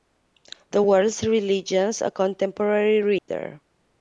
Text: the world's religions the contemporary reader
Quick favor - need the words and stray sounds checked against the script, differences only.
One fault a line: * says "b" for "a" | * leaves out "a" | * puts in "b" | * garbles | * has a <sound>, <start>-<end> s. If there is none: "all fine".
* says "a" for "the"
* has a dropout, 3.2-3.3 s